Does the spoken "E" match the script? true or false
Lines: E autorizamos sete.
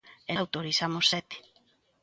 true